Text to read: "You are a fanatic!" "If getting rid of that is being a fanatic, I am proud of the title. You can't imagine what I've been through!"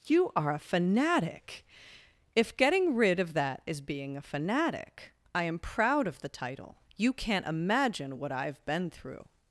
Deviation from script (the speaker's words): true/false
false